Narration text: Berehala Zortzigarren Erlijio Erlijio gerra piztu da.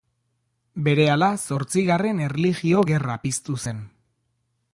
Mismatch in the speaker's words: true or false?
true